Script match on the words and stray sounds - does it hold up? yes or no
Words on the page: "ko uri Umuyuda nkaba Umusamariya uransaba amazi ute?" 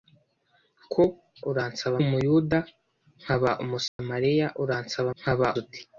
no